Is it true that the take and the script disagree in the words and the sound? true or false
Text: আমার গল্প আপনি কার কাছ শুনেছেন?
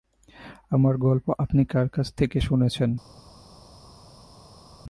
true